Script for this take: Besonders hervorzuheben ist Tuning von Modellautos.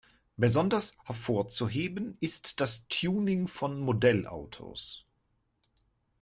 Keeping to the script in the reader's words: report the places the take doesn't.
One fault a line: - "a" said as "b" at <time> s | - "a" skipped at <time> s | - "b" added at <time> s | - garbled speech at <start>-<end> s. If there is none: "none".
- "das" added at 2.6 s